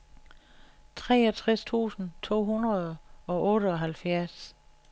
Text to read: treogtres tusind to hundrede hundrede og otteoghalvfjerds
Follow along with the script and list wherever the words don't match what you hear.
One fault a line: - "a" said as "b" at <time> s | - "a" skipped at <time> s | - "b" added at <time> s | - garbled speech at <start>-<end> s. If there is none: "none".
- "hundrede" skipped at 3.0 s